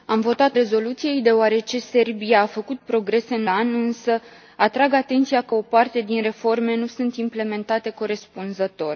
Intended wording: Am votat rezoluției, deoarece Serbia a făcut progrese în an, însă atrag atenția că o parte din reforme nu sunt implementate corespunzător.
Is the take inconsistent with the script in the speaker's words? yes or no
no